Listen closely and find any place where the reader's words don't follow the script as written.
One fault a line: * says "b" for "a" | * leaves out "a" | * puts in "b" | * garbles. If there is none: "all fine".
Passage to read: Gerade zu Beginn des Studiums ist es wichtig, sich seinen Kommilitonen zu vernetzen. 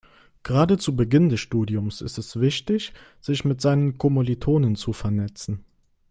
* puts in "mit"